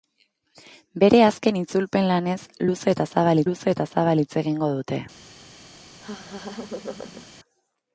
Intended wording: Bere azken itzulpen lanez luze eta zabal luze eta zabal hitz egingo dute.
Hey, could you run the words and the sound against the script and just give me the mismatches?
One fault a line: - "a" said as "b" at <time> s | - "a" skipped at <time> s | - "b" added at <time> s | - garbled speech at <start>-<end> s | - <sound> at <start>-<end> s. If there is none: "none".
- laugh at 6.0-7.3 s